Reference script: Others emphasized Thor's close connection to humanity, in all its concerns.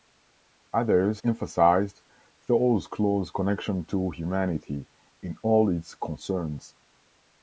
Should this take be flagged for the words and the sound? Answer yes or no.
no